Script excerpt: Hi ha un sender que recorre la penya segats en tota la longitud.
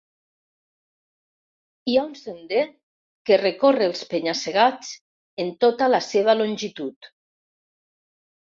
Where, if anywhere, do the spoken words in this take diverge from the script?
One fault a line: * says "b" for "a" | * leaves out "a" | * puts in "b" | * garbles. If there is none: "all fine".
* says "els" for "la"
* puts in "seva"